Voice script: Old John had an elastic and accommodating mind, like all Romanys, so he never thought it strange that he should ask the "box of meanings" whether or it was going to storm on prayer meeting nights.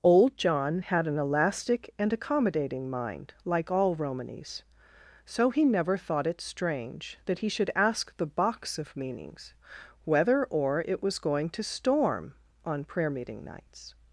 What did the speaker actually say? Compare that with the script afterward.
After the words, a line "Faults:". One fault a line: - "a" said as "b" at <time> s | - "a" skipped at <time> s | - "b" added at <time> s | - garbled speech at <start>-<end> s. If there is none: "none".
Old John had an elastic and accommodating mind, like all Romanys, so he never thought it strange that he should ask the "box of meanings" whether or it was going to storm on prayer meeting nights.
Faults:
none